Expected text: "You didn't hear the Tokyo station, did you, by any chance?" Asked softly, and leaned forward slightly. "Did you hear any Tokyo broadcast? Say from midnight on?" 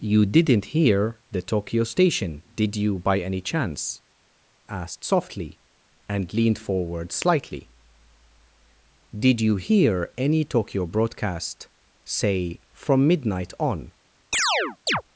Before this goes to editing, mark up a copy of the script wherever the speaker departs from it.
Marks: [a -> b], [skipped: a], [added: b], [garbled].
"You didn't hear the Tokyo station, did you, by any chance?" Asked softly, and leaned forward slightly. "Did you hear any Tokyo broadcast? Say from midnight on?"